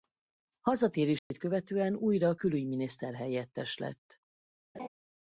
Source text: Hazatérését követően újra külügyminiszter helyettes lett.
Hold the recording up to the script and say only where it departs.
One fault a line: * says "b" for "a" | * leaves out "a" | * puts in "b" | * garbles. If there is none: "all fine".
all fine